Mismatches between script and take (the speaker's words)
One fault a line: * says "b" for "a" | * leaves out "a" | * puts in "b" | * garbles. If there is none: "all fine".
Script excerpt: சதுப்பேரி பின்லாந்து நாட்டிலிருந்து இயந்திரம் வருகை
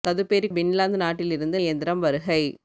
all fine